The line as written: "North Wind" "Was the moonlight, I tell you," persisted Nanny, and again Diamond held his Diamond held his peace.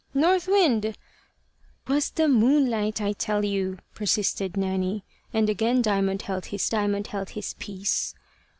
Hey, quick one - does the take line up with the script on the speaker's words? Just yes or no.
yes